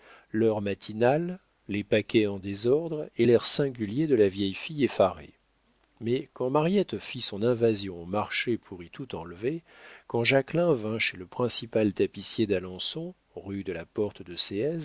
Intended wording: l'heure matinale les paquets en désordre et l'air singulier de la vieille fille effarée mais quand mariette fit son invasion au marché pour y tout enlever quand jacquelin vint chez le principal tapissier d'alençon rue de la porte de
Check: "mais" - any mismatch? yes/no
no